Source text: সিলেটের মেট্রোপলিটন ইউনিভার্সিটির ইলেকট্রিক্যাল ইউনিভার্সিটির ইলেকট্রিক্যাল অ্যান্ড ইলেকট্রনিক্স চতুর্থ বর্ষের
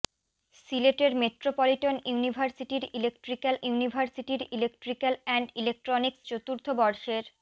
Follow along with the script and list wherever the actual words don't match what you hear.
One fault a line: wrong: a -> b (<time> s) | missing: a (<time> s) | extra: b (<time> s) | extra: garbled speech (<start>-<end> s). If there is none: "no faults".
no faults